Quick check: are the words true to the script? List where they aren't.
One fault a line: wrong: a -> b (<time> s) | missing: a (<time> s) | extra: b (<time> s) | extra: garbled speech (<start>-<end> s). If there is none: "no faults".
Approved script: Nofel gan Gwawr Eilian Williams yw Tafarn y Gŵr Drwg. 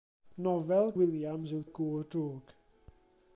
missing: gan Gwawr Eilian (0.9 s)
missing: Tafarn (1.6 s)